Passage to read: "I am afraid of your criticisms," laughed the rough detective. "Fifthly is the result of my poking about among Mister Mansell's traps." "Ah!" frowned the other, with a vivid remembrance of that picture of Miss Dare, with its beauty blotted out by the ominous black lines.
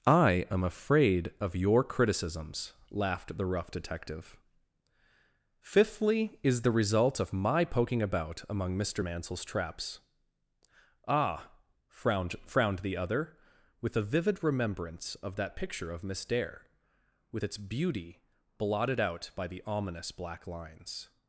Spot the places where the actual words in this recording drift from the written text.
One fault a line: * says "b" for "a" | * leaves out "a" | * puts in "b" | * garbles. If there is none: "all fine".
* puts in "frowned"